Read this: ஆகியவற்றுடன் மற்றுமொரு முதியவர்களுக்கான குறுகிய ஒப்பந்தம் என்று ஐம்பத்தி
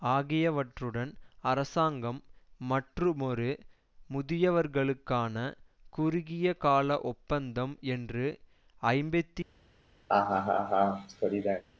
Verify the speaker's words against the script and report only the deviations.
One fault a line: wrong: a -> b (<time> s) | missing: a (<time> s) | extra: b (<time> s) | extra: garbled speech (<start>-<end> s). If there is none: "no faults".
extra: அரசாங்கம் (1.4 s)
extra: கால (6.6 s)